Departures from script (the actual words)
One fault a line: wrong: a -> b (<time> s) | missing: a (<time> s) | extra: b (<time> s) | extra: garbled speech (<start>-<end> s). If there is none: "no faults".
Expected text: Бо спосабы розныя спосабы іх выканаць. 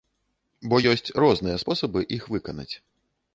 wrong: спосабы -> ёсць (0.9 s)